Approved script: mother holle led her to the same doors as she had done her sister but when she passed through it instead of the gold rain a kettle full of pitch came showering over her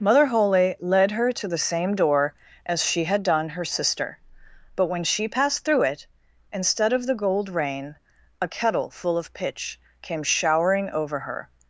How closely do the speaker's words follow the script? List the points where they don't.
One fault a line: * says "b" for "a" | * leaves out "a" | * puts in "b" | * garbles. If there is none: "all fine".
* says "door" for "doors"